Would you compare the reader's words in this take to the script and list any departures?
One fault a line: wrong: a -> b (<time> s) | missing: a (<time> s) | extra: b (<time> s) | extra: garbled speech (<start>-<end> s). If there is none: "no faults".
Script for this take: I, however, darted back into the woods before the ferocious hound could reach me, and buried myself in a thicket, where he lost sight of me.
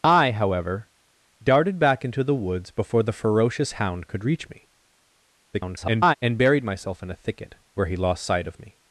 extra: garbled speech (5.5-6.1 s)